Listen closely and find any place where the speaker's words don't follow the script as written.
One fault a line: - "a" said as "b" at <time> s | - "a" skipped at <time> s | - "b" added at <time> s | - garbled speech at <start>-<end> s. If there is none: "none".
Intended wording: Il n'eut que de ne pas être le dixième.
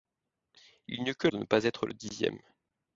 none